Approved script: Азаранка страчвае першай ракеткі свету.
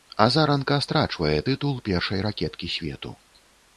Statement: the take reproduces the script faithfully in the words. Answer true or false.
false